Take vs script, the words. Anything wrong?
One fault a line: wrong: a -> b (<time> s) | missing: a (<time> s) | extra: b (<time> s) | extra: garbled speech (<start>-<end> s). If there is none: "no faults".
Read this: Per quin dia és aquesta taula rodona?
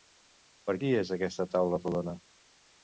missing: quin (0.8 s)